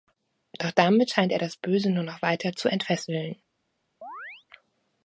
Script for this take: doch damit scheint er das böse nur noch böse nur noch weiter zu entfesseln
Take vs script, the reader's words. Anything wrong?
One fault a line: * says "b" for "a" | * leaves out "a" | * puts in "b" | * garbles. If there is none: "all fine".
* leaves out "böse nur noch"